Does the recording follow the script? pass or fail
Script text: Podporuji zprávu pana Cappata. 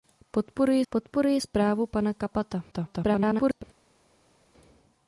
fail